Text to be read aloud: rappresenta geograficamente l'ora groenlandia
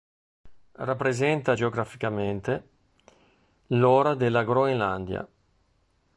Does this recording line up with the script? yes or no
no